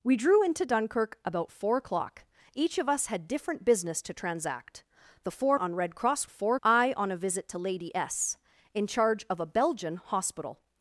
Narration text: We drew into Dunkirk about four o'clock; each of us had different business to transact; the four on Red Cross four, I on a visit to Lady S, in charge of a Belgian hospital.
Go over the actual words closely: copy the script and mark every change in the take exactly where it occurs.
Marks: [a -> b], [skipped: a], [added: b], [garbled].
We drew into Dunkirk about four o'clock; each of us had different business to transact; the four on Red Cross four, I on a visit to Lady S, in charge of a Belgian hospital.